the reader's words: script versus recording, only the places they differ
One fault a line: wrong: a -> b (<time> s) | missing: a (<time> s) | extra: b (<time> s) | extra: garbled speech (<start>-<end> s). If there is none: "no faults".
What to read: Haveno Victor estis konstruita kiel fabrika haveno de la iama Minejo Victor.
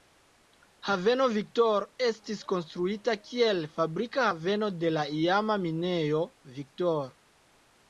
no faults